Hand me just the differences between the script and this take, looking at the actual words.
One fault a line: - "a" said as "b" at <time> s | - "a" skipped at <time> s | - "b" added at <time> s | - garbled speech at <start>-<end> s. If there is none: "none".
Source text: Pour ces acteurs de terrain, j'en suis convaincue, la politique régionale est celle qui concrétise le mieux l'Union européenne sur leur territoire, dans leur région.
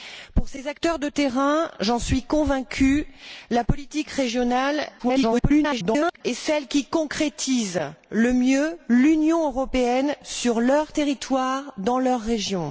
- garbled speech at 5.0-6.2 s